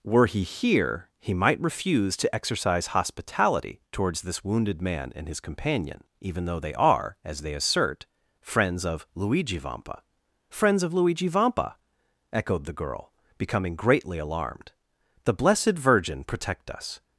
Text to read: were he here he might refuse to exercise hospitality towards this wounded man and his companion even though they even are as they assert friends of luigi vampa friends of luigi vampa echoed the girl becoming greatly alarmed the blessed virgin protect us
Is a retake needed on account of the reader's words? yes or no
yes